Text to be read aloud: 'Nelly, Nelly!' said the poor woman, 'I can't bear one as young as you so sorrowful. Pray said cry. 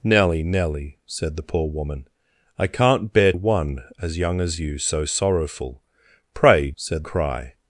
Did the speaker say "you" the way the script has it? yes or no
yes